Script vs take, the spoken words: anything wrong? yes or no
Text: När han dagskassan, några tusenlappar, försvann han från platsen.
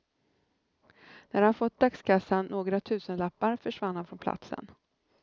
yes